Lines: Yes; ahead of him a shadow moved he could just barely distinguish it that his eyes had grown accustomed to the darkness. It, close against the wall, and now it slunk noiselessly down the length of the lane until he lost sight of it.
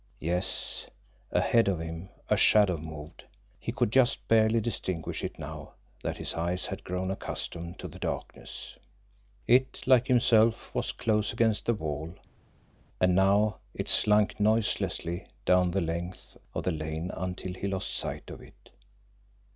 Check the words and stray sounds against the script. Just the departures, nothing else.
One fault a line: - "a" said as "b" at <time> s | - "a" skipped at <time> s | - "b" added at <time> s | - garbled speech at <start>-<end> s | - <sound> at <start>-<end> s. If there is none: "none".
- "now" added at 5.4 s
- "like himself was" added at 9.8 s